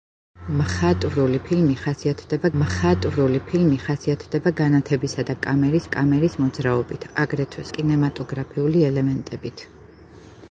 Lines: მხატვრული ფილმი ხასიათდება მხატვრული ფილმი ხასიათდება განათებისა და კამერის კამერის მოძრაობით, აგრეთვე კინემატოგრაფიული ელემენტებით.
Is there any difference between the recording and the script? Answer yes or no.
no